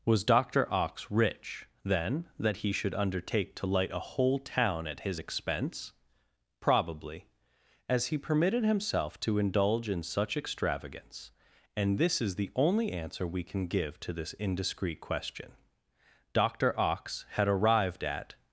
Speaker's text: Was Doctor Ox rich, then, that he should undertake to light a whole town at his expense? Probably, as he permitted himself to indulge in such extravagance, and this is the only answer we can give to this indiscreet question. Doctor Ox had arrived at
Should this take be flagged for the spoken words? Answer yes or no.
no